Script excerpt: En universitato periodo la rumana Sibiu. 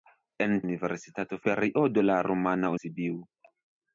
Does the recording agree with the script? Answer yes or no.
yes